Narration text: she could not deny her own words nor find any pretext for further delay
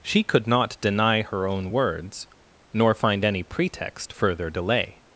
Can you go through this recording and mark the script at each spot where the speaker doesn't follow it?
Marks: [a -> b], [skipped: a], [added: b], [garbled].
she could not deny her own words nor find any pretext [skipped: for] further delay